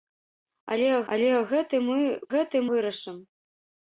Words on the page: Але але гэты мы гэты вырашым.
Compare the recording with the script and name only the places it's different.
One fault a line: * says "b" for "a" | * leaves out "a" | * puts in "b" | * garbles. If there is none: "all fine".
all fine